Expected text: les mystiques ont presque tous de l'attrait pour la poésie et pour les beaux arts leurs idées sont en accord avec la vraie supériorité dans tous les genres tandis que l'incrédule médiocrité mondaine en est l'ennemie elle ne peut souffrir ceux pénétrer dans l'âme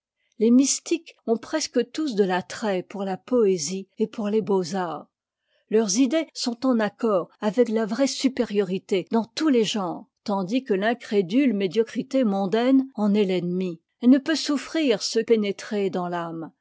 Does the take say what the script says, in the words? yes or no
yes